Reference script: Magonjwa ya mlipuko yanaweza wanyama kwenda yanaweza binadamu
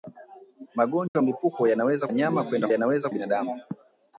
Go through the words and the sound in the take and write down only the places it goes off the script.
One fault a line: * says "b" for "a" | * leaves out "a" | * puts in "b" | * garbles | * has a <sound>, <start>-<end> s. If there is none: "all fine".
* has a dropout, 1.1-1.2 s